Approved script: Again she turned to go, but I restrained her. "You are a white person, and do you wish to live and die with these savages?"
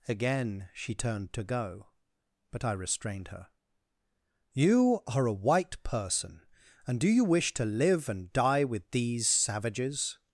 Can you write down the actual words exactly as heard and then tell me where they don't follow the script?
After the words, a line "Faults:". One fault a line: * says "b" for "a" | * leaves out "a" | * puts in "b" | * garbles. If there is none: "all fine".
Again she turned to go, but I restrained her. "You are a white person, and do you wish to live and die with these savages?"
Faults:
all fine